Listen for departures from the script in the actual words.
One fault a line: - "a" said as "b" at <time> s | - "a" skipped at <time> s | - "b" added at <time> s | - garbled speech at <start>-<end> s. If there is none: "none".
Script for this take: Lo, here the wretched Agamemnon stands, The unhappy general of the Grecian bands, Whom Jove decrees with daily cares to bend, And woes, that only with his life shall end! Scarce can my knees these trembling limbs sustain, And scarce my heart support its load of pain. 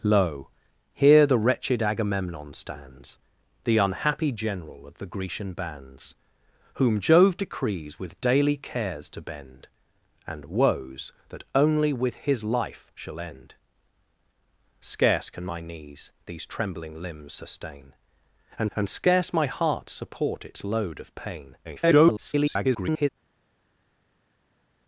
- "And" added at 18.7 s
- garbled speech at 21.6-23.1 s